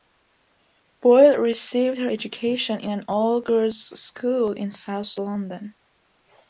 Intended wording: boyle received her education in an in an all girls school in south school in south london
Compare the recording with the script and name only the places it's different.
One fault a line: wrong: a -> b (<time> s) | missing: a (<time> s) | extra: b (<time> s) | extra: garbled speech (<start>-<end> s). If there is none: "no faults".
missing: in an (3.1 s)
missing: school in south (5.2 s)